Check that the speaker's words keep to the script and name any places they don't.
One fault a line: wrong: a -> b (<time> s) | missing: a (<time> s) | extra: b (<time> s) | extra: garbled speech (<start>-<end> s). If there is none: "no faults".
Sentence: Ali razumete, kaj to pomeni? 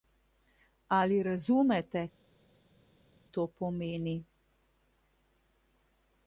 missing: kaj (2.0 s)